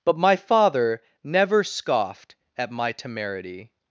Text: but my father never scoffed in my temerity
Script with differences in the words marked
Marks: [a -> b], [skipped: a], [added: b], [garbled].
but my father never scoffed [in -> at] my temerity